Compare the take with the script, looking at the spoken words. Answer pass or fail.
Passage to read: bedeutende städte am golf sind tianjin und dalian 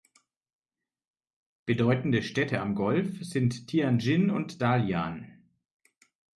pass